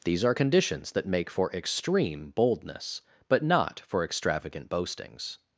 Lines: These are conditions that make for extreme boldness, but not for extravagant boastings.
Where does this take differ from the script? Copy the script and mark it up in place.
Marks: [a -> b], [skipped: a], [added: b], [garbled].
These are conditions that make for extreme boldness, but not for extravagant boastings.